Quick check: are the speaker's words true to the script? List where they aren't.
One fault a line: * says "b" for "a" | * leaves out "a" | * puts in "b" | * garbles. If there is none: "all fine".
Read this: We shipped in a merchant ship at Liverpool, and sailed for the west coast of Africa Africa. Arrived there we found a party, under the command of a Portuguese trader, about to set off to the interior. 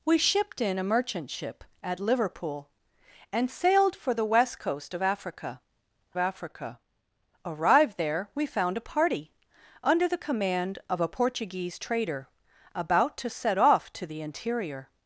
all fine